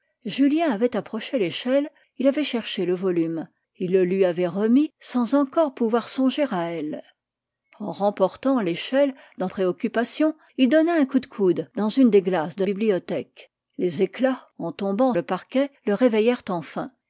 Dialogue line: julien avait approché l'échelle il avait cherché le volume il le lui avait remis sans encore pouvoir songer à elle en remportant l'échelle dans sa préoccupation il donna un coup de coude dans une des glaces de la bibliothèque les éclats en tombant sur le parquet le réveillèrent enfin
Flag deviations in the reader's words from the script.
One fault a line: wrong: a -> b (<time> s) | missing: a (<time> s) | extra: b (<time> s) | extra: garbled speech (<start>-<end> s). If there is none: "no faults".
missing: sa (9.5 s)
missing: la (12.6 s)
missing: sur (15.1 s)